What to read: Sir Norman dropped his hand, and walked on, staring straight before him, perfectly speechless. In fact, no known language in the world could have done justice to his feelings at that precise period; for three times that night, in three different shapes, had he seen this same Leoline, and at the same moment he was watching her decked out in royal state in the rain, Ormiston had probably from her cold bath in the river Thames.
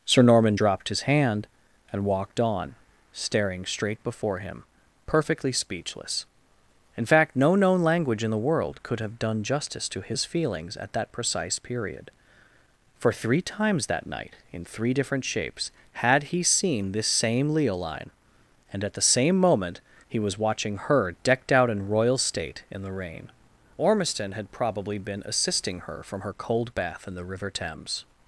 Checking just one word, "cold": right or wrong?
right